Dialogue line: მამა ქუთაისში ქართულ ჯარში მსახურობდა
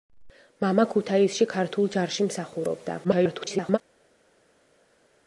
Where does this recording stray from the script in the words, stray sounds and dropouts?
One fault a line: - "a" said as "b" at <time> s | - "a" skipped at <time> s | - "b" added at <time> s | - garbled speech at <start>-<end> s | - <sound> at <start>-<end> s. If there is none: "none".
- garbled speech at 3.0-3.8 s